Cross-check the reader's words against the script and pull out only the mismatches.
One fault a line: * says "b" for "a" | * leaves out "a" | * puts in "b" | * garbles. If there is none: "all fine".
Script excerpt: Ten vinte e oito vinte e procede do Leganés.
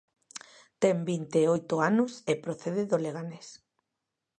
* says "anos" for "vinte"